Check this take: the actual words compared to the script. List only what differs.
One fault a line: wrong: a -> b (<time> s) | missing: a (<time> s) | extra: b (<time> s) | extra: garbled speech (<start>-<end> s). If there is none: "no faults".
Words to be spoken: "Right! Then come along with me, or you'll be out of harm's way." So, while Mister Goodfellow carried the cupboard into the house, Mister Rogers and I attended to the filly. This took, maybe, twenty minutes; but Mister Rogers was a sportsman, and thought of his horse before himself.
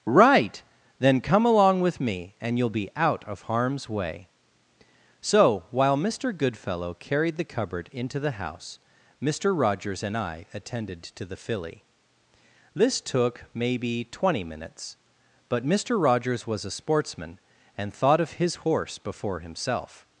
wrong: or -> and (2.4 s)